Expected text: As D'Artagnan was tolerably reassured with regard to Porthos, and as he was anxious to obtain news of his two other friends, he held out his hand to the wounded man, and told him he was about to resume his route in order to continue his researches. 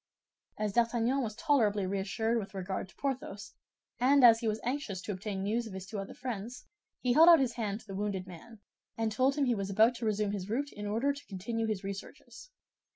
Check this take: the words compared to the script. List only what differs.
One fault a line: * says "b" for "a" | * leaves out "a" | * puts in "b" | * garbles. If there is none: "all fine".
all fine